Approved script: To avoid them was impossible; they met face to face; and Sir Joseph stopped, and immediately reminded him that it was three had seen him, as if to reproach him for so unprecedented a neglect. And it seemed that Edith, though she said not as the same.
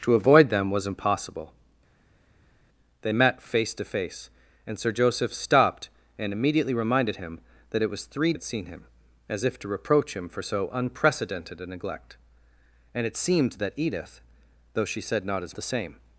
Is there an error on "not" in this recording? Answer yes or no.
no